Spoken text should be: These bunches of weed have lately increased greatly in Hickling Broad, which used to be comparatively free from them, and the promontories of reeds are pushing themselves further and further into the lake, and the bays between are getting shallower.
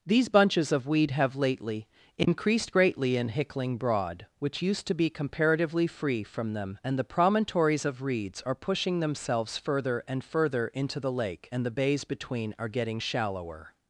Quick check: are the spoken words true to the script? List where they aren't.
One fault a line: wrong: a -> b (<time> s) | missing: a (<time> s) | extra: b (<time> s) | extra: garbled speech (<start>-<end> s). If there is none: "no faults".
no faults